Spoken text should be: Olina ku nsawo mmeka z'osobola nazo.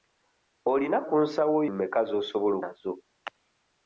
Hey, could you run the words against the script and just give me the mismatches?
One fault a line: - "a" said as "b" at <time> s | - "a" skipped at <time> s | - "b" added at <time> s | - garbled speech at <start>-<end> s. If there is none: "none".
none